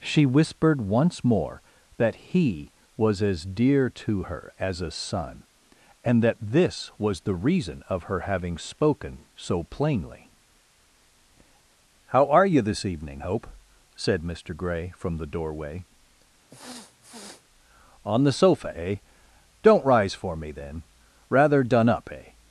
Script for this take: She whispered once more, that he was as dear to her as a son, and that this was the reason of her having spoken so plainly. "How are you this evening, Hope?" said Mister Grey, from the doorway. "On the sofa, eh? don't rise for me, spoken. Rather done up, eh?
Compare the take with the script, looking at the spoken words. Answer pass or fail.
fail